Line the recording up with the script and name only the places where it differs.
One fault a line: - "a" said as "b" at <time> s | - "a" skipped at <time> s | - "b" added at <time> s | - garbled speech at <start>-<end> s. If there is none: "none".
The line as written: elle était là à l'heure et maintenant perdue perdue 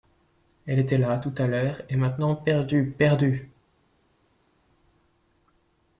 - "tout" added at 1.2 s